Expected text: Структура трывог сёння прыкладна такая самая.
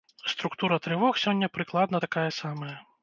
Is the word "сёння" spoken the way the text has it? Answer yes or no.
yes